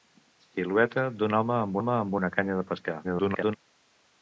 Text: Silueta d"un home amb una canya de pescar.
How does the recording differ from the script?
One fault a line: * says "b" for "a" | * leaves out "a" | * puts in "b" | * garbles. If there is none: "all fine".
* puts in "home amb"
* garbles